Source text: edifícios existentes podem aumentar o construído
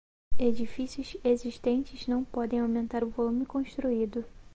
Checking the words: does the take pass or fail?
fail